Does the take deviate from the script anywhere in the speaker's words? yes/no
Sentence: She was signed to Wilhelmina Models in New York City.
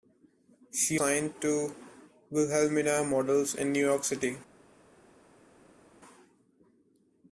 yes